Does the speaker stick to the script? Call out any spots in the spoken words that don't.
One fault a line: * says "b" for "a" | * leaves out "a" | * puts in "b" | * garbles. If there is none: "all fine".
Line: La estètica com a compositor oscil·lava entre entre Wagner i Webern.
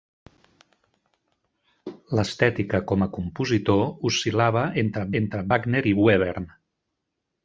all fine